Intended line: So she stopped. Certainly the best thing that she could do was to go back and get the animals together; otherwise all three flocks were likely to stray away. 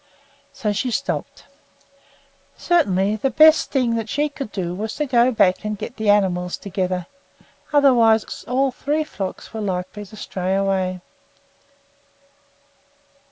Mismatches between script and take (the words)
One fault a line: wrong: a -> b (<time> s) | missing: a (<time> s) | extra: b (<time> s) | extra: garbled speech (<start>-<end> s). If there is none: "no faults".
no faults